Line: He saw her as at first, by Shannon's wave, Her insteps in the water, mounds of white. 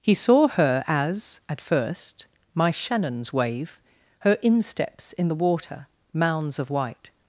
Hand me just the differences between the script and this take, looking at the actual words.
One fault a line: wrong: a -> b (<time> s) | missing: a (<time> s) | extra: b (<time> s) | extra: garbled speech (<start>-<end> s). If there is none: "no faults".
wrong: by -> my (2.5 s)